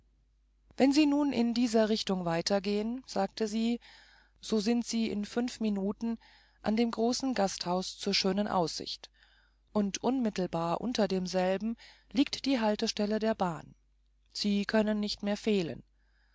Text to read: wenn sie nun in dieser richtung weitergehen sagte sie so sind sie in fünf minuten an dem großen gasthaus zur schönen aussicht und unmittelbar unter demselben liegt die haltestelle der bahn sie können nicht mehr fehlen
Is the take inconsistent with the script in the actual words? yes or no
no